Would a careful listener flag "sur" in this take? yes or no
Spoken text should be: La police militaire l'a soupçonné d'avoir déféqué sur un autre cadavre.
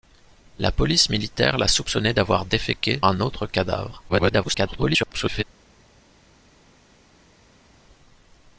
yes